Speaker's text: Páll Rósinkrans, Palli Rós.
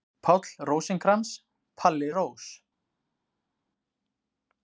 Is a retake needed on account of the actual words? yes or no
no